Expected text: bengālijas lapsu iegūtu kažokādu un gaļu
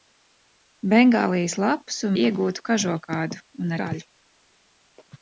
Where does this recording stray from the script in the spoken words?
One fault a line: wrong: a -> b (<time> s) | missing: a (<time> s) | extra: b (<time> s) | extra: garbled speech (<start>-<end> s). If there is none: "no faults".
no faults